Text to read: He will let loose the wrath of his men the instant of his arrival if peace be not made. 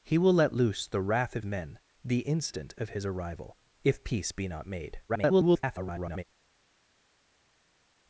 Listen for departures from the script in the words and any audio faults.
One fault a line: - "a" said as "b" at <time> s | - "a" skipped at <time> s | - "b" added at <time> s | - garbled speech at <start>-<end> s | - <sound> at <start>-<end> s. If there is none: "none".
- "his" skipped at 1.4 s
- garbled speech at 5.1-6.2 s